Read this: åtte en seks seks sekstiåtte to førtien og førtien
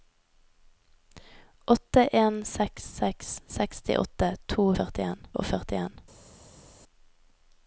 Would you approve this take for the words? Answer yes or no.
yes